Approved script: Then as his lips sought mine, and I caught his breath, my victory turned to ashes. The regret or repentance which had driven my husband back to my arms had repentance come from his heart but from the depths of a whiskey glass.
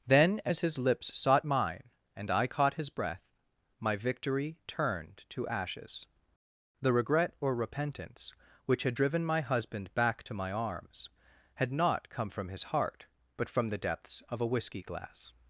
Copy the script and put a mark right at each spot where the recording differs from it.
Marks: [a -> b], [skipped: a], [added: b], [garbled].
Then as his lips sought mine, and I caught his breath, my victory turned to ashes. The regret or repentance which had driven my husband back to my arms had [repentance -> not] come from his heart but from the depths of a whiskey glass.